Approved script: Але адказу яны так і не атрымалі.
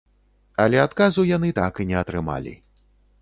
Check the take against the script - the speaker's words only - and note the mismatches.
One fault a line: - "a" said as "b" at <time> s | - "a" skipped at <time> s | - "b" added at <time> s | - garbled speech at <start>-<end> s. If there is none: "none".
none